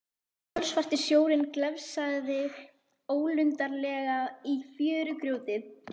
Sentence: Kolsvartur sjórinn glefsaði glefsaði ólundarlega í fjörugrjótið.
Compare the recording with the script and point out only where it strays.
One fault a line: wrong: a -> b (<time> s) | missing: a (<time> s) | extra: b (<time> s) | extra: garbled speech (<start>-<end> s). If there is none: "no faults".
missing: glefsaði (2.4 s)